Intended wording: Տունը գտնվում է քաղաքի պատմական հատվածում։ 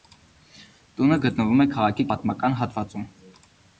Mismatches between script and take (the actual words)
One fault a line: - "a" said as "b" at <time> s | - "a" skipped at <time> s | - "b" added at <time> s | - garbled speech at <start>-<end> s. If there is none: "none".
none